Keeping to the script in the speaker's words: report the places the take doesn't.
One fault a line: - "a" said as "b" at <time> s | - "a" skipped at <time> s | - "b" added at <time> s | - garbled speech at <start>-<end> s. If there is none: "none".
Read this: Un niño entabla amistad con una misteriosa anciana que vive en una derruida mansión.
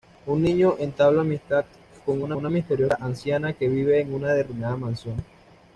- "una" added at 2.3 s